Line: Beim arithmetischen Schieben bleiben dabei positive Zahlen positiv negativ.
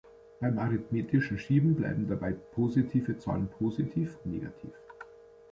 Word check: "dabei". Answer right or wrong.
right